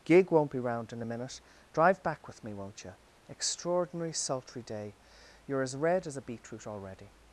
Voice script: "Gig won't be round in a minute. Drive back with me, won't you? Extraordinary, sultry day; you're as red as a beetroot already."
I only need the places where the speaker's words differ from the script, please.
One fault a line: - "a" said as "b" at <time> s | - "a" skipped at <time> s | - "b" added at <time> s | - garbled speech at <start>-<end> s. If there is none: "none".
none